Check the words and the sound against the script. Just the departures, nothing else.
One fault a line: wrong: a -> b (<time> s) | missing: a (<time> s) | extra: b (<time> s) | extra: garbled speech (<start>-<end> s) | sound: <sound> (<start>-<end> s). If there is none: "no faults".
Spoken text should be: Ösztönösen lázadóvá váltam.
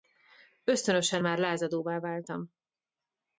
extra: már (1.2 s)